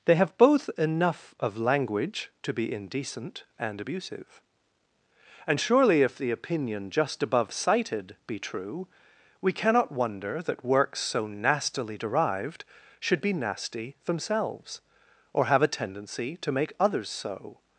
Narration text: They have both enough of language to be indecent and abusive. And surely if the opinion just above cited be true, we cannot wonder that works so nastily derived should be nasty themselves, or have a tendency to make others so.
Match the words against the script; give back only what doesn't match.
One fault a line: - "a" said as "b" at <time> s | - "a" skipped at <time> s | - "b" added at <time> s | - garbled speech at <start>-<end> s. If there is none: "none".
none